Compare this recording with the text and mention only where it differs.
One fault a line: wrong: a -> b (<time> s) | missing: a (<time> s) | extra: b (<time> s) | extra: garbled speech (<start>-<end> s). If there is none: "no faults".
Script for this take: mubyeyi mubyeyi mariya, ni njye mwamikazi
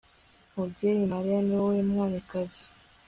missing: mubyeyi (1.0 s)
wrong: njye -> wowe (1.6 s)